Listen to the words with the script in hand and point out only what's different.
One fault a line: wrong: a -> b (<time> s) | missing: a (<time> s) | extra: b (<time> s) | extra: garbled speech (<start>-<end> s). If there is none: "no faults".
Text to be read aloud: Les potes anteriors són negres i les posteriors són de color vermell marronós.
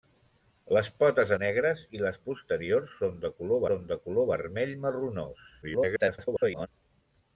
missing: anteriors són (1.3 s)
extra: són de color (3.7 s)
extra: garbled speech (5.6-6.7 s)